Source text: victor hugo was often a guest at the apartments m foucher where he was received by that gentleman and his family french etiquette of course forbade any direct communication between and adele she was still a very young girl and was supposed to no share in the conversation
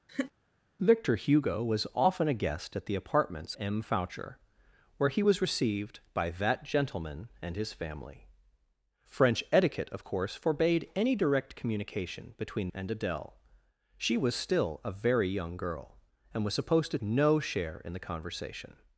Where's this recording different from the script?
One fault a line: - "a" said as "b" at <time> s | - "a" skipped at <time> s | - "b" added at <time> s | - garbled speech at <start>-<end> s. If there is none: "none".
none